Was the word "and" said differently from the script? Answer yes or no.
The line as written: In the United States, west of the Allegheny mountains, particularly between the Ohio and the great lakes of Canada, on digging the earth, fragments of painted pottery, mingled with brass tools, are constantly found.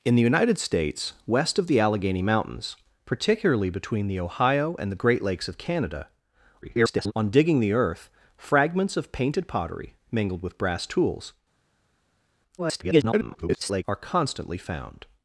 no